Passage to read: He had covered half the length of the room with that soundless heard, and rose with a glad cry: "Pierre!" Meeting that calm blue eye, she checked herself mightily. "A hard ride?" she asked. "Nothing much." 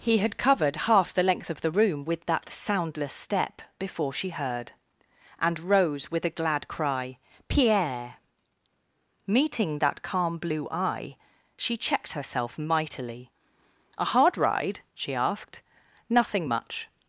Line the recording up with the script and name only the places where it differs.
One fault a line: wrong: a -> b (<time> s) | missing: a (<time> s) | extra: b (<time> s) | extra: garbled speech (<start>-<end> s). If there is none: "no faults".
extra: step before she (3.1 s)